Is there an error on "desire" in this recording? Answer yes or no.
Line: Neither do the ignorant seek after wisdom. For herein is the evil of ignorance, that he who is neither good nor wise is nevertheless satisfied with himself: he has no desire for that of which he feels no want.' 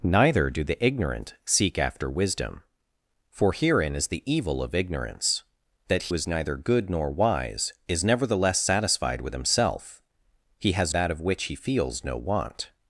yes